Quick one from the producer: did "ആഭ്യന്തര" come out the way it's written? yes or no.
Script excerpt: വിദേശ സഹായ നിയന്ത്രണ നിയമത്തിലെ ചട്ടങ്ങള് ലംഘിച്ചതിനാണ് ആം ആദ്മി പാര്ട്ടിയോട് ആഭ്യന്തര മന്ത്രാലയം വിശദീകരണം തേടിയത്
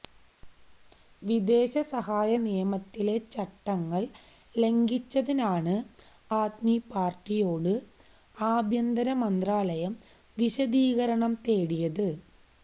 yes